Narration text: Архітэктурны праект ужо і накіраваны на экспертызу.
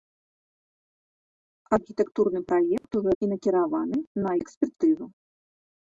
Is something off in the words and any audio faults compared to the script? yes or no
yes